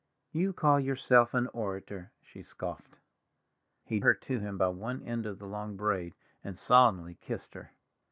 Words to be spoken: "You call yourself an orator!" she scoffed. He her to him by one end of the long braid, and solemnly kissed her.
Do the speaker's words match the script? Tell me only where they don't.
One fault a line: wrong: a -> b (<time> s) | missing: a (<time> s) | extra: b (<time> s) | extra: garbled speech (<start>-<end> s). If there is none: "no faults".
no faults